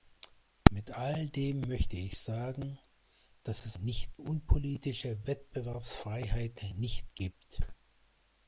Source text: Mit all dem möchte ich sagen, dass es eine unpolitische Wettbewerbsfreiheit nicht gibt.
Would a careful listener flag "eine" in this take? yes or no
yes